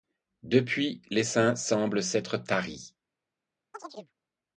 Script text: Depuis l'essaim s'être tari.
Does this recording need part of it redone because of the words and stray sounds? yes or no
yes